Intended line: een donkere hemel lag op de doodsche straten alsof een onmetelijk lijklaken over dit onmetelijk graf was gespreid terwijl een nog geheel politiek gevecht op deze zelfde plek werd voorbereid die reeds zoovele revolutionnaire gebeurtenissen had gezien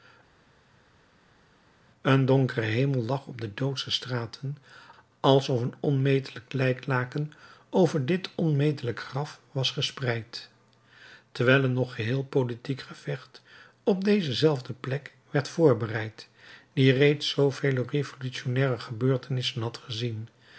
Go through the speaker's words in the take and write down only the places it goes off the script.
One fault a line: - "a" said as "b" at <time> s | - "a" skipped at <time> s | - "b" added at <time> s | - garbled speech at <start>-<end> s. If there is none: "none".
none